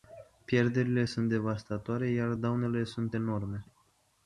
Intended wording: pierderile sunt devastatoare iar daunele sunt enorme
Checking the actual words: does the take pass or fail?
pass